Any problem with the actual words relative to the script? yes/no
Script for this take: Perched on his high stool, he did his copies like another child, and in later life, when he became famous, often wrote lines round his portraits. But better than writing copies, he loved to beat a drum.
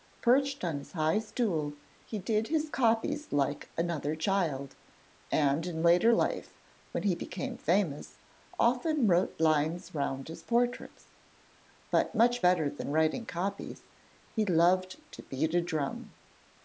yes